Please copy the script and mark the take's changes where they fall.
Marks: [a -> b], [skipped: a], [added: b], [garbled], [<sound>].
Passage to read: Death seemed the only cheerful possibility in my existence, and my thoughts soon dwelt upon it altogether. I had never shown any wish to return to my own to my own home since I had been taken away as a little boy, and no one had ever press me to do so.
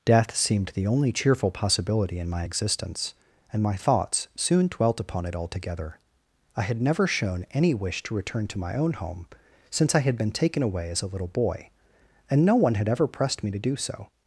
Death seemed the only cheerful possibility in my existence, and my thoughts soon dwelt upon it altogether. I had never shown any wish to return to my own [skipped: to my own] home since I had been taken away as a little boy, and no one had ever [press -> pressed] me to do so.